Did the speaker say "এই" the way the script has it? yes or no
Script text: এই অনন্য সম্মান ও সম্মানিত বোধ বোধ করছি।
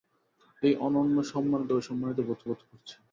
yes